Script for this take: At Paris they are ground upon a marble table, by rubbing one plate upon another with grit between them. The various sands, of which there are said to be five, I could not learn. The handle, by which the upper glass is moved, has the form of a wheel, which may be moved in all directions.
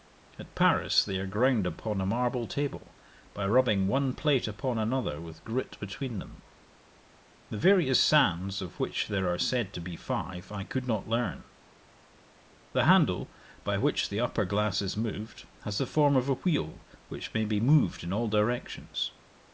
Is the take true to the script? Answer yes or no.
yes